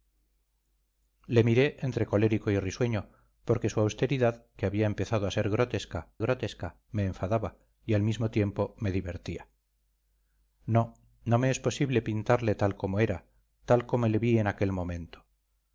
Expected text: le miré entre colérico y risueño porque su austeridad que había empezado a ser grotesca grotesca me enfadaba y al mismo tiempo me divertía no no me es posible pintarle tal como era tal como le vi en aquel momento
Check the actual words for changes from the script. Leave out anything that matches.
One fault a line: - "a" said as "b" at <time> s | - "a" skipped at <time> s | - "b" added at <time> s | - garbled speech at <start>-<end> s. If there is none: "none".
none